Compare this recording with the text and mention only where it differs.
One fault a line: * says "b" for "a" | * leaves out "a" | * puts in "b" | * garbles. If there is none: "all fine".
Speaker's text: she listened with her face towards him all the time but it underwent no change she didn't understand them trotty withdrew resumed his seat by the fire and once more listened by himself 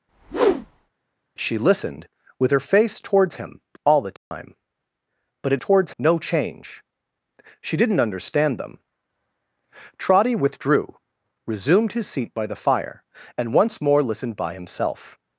* says "towards" for "underwent"